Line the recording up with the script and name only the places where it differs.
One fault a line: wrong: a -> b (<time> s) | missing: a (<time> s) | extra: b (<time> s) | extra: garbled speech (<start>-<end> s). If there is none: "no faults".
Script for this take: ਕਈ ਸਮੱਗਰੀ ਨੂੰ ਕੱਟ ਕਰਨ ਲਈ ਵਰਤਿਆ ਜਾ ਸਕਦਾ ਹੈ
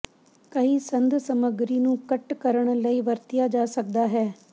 extra: ਸੰਦ (0.8 s)